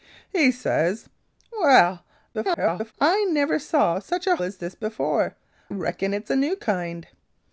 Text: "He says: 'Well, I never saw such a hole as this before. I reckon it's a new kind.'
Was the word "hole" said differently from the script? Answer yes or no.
yes